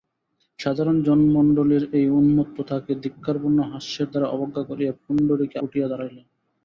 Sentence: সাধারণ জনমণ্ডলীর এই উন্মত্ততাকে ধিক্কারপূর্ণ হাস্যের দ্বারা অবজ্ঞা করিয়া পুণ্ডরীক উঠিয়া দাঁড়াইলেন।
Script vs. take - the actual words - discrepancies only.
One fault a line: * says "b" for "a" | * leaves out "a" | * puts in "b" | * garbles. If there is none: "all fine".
all fine